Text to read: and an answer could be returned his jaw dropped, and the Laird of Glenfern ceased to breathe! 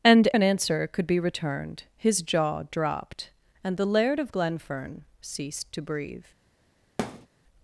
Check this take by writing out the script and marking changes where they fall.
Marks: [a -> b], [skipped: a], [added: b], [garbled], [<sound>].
and an answer could be returned his jaw dropped, and the Laird of Glenfern ceased to breathe! [thud]